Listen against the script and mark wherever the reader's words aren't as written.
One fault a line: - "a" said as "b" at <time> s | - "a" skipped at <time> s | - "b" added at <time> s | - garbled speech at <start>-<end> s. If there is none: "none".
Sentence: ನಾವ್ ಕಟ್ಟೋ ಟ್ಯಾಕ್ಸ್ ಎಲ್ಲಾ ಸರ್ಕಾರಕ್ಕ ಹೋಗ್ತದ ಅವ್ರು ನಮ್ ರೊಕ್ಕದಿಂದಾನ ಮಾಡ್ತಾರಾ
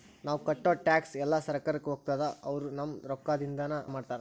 none